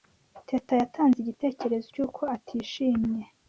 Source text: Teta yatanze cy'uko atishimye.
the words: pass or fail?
fail